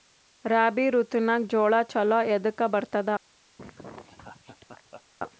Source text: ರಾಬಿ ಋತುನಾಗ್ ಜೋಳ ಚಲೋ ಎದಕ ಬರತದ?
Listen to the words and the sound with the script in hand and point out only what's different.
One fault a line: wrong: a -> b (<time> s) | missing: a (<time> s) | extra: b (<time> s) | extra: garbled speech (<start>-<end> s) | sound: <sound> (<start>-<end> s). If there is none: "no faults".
sound: laugh (3.6-5.0 s)